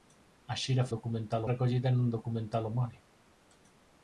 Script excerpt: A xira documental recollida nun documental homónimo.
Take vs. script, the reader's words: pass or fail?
pass